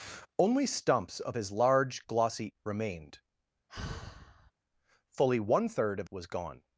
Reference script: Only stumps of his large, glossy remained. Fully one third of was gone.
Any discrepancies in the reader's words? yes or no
no